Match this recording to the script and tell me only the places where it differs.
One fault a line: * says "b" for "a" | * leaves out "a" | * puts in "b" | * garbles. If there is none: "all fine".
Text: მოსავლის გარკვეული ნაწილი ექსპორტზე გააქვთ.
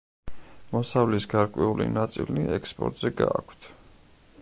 all fine